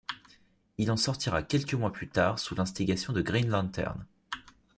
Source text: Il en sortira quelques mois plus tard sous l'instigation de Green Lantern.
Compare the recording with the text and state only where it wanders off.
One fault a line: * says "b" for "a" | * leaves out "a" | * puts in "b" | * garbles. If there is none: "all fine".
all fine